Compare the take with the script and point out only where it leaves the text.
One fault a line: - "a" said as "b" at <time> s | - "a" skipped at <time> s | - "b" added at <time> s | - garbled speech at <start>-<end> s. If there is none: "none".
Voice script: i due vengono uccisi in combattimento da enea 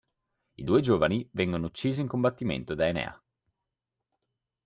- "giovani" added at 0.8 s